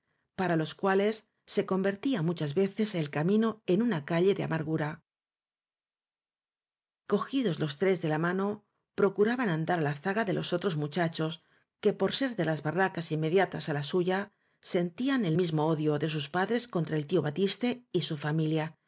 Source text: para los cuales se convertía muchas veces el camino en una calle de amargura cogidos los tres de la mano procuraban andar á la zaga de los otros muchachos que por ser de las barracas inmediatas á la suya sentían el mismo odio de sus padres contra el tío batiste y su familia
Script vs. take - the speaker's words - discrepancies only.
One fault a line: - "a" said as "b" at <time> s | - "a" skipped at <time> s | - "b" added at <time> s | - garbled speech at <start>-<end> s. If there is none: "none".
none